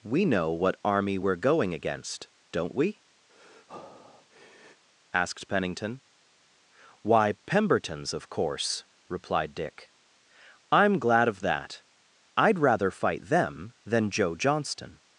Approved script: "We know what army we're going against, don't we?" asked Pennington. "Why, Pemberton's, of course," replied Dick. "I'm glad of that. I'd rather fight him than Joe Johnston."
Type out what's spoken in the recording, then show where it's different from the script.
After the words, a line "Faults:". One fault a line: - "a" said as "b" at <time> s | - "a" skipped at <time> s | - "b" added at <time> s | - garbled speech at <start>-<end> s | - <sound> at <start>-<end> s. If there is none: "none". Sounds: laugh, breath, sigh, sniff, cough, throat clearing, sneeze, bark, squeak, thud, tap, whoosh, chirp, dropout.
"We know what army we're going against, don't we?" asked Pennington. "Why, Pemberton's, of course," replied Dick. "I'm glad of that. I'd rather fight them than Joe Johnston."
Faults:
- breath at 3.3-4.8 s
- "him" said as "them" at 13.2 s